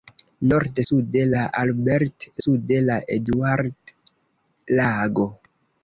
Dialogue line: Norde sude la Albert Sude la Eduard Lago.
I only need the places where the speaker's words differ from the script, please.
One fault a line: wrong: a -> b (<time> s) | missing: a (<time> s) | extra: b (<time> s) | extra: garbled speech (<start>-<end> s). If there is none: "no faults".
no faults